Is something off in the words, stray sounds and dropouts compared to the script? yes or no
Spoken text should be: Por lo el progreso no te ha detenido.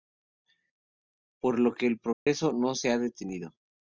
yes